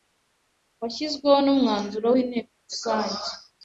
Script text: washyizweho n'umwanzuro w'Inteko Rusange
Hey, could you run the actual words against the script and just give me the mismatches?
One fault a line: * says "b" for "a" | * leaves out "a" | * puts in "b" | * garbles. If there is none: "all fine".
all fine